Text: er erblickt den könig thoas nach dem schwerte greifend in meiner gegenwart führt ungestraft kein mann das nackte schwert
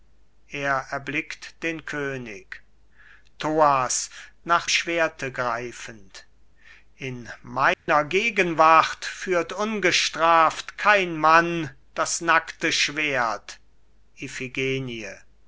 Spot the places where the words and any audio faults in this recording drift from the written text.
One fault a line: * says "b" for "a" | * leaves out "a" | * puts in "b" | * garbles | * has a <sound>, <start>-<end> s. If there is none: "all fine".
* leaves out "dem"
* has a dropout, 7.7-7.9 s